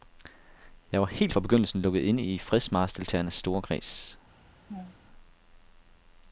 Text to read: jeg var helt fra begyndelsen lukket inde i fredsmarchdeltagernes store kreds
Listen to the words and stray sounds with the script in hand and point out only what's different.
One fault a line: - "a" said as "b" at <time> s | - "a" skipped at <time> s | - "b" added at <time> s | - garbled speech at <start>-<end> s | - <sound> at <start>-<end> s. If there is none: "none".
- laugh at 4.7-5.0 s